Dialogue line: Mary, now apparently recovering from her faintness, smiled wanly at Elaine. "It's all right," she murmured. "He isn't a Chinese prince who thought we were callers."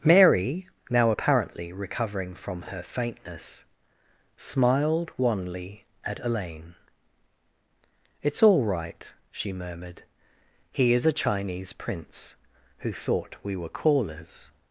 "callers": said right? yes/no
yes